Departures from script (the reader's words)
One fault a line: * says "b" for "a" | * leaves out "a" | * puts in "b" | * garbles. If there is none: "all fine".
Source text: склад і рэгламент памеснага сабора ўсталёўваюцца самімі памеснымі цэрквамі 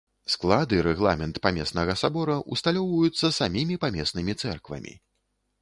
all fine